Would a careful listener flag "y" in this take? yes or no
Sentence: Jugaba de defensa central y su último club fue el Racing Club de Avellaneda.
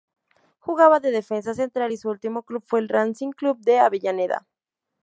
no